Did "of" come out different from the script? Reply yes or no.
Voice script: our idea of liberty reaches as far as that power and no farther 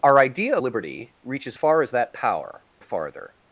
yes